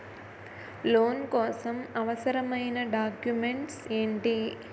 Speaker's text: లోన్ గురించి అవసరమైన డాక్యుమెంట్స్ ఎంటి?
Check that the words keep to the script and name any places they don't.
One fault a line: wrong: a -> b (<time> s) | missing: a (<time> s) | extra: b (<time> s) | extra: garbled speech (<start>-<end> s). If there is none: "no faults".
wrong: గురించి -> కోసం (1.3 s)